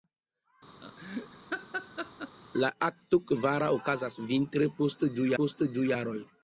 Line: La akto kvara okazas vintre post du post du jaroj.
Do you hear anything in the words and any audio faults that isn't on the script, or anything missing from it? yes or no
yes